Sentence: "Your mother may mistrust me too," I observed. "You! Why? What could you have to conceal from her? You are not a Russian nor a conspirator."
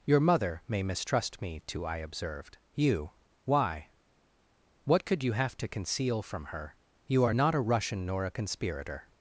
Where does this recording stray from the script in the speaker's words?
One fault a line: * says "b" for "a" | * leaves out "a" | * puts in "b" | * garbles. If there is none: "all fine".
all fine